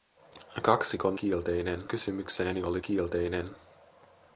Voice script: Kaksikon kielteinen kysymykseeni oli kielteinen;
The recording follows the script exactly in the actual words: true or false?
true